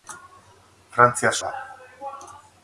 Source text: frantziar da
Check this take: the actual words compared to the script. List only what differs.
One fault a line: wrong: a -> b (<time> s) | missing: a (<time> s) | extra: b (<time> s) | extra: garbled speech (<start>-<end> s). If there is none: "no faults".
no faults